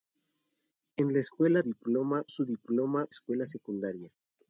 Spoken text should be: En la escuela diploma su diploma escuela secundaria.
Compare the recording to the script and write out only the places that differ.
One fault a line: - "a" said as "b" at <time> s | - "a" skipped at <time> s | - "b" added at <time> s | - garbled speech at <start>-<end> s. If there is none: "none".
none